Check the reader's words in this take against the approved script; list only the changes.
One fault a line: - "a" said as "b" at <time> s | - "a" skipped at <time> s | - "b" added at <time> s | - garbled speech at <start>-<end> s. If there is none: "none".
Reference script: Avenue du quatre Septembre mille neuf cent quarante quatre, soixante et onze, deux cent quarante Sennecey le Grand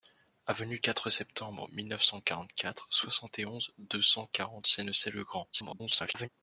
- "du" skipped at 0.8 s
- garbled speech at 5.5-6.3 s